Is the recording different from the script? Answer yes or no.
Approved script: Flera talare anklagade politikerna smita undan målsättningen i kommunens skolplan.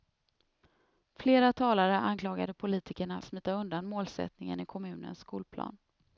no